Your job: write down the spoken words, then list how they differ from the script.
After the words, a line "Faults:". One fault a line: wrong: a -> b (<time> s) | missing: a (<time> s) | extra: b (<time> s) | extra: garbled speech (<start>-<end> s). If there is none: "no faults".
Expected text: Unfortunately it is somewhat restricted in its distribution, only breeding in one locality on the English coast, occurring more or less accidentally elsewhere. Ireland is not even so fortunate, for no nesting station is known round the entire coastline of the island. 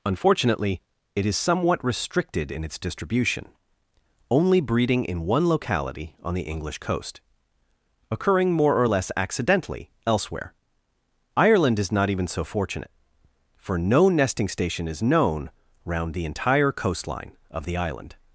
Unfortunately it is somewhat restricted in its distribution, only breeding in one locality on the English coast, occurring more or less accidentally elsewhere. Ireland is not even so fortunate, for no nesting station is known round the entire coastline of the island.
Faults:
no faults